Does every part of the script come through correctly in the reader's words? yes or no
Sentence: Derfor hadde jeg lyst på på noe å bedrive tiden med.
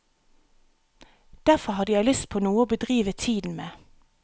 no